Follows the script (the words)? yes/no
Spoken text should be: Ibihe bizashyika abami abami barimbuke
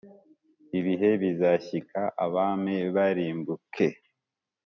no